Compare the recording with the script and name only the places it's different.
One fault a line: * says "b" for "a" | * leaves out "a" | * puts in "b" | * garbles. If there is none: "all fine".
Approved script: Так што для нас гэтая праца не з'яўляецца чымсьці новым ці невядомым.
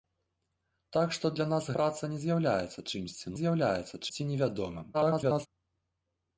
* leaves out "гэтая"
* says "з'яўляецца" for "новым"
* garbles